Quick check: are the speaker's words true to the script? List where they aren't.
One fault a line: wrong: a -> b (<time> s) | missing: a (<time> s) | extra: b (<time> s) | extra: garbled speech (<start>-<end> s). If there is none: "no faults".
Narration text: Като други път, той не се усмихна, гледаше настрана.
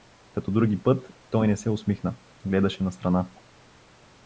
no faults